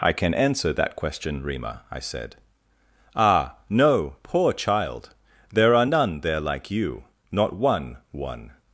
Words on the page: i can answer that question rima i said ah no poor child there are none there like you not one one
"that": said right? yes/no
yes